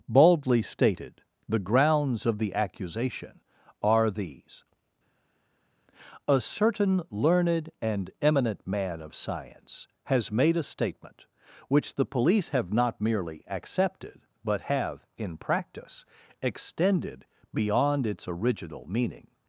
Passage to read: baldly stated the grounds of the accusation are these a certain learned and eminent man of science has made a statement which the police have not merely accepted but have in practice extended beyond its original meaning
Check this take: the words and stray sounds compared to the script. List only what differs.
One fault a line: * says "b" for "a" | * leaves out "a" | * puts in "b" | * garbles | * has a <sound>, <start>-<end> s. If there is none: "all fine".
all fine